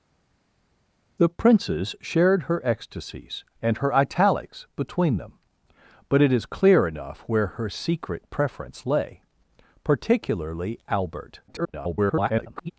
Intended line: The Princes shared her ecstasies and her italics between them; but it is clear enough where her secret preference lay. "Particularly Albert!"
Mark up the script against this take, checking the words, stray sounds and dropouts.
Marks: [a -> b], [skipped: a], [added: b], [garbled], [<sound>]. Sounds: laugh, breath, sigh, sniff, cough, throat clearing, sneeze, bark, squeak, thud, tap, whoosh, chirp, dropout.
The Princes shared her ecstasies and her italics between them; but it is clear enough where her secret preference lay. "Particularly Albert!" [garbled]